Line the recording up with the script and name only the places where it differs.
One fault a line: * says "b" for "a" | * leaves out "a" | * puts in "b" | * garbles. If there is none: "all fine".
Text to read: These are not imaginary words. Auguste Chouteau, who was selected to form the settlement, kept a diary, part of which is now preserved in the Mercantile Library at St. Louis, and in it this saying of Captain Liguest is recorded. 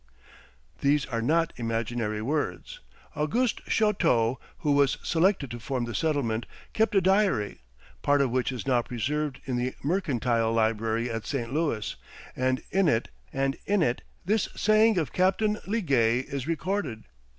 * puts in "and in it"